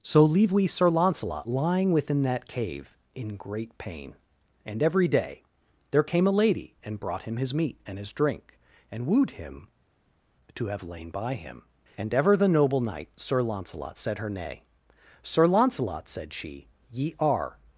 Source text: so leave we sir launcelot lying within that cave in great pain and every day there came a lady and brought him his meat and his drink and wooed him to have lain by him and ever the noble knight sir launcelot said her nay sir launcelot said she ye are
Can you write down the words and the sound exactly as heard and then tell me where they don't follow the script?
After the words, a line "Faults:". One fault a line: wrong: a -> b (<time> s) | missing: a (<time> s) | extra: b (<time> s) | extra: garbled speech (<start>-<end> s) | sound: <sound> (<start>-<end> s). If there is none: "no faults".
so leave we sir launcelot lying within that cave in great pain and every day there came a lady and brought him his meat and his drink and wooed him to have lain by him and ever the noble knight sir launcelot said her nay sir launcelot said she ye are
Faults:
no faults